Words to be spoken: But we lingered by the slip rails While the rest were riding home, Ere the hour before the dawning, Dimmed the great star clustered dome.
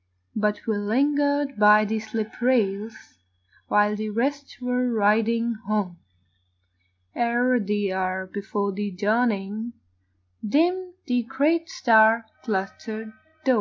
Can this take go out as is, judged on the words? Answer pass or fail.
pass